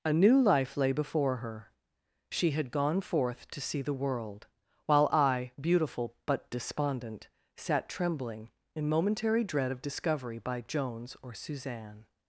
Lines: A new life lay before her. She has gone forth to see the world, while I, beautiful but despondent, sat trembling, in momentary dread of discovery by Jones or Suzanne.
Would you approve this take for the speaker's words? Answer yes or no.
no